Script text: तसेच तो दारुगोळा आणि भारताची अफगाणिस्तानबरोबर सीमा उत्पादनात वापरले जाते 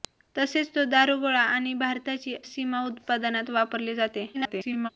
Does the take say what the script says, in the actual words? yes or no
no